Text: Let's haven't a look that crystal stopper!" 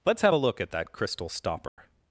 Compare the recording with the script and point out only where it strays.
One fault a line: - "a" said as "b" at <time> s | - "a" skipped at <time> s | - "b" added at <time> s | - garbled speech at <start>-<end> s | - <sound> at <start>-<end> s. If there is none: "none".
- "haven't" said as "have" at 0.2 s
- "at" added at 0.6 s
- dropout at 1.7-1.8 s